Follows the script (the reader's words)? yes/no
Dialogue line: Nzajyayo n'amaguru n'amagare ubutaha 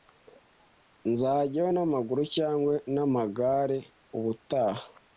no